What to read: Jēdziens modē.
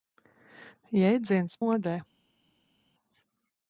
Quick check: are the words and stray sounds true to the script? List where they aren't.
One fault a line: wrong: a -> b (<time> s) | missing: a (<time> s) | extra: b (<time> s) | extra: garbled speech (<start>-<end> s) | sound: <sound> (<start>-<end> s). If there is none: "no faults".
no faults